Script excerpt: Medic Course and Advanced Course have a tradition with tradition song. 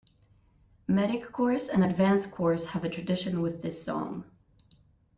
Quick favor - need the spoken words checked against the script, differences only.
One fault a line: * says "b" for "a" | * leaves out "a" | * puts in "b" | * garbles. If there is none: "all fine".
* says "this" for "tradition"